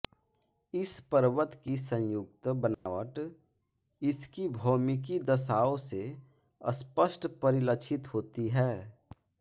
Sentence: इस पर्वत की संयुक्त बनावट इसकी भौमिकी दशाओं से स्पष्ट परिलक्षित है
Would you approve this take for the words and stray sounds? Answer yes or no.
no